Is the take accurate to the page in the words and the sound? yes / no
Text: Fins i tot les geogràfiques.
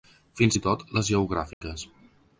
no